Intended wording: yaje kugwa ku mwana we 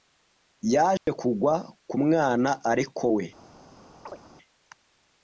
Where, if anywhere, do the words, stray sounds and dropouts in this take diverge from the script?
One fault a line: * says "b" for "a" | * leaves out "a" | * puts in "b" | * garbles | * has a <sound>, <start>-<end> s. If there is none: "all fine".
* has a dropout, 1.0-1.1 s
* puts in "ariko"
* has a chirp, 4.1-4.2 s